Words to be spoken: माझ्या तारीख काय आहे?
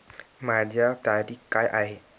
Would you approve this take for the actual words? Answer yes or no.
yes